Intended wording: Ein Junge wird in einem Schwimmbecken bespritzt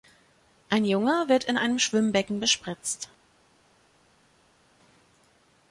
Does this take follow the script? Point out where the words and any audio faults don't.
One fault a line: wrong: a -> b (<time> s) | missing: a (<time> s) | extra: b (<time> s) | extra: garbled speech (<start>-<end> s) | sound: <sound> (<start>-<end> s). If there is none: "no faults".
no faults